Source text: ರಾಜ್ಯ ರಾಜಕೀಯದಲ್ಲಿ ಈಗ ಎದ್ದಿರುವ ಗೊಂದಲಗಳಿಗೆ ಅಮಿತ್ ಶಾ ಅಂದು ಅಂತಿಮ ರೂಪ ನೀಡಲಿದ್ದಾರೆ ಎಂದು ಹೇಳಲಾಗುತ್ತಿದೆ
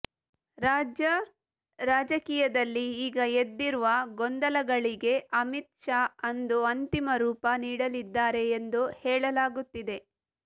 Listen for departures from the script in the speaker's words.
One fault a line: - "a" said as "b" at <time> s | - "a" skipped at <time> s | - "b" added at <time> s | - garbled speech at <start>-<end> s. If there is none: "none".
none